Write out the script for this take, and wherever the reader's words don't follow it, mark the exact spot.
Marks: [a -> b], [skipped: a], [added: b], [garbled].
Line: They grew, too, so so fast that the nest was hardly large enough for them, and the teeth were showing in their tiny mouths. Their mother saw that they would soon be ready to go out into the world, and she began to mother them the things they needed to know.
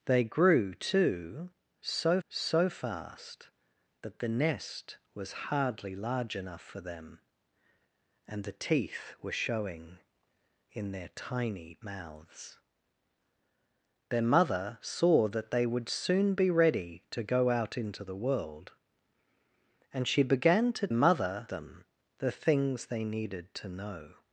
They grew, too, so so fast that the nest was hardly large enough for them, and the teeth were showing in their tiny mouths. Their mother saw that they would soon be ready to go out into the world, and she began to mother them the things they needed to know.